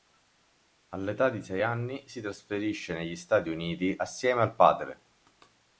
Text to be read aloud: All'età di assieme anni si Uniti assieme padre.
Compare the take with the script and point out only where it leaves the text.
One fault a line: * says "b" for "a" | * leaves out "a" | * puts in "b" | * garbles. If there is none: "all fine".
* says "sei" for "assieme"
* puts in "trasferisce negli Stati"
* puts in "al"